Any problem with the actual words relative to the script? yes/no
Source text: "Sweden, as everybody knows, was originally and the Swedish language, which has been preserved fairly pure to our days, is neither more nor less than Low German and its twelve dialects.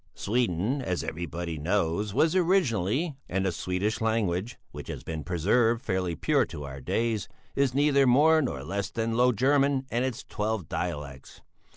no